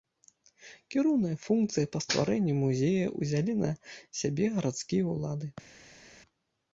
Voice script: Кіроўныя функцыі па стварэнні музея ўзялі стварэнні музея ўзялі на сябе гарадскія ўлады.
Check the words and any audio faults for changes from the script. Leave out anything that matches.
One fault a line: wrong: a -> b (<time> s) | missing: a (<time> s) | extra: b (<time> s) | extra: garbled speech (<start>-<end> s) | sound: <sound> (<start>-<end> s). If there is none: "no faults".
missing: стварэнні музея ўзялі (3.6 s)